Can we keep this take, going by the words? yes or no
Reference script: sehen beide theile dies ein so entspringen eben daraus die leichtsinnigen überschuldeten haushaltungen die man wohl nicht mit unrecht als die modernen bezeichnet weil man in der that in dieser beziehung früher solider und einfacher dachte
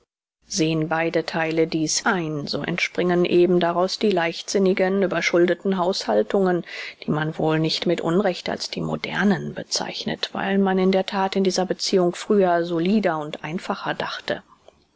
yes